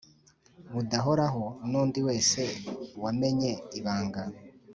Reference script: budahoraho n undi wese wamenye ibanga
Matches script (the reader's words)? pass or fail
pass